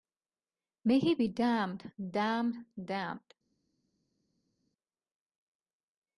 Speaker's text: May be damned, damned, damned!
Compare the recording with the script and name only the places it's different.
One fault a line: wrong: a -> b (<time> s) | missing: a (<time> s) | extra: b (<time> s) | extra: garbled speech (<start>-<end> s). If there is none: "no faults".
extra: he (1.0 s)